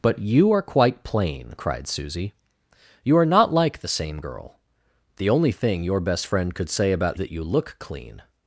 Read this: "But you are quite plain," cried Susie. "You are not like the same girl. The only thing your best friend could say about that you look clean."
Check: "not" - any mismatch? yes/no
no